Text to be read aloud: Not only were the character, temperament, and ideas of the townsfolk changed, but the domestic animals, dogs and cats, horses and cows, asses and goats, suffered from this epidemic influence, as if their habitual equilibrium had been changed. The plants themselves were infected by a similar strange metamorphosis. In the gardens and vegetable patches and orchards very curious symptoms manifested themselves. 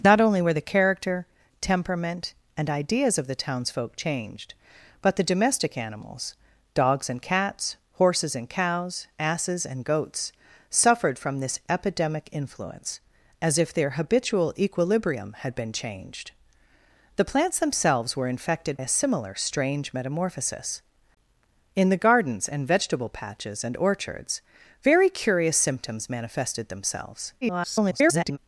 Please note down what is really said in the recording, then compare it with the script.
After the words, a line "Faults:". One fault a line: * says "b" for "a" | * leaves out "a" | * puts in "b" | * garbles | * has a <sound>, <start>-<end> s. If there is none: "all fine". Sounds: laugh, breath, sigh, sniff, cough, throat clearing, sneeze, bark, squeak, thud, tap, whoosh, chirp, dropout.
Not only were the character, temperament, and ideas of the townsfolk changed, but the domestic animals, dogs and cats, horses and cows, asses and goats, suffered from this epidemic influence, as if their habitual equilibrium had been changed. The plants themselves were infected a similar strange metamorphosis. In the gardens and vegetable patches and orchards very curious symptoms manifested themselves. [garbled]
Faults:
* leaves out "by"
* garbles